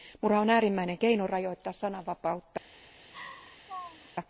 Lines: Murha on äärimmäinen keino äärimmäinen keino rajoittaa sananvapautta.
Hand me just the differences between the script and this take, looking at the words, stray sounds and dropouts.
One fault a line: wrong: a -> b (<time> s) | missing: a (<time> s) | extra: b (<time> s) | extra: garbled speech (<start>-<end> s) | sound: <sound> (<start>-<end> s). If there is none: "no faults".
missing: äärimmäinen keino (1.3 s)
sound: laugh (3.1-4.1 s)